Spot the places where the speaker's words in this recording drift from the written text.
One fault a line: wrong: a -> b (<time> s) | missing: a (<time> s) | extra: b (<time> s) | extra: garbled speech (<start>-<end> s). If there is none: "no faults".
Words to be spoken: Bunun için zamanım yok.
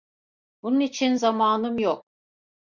no faults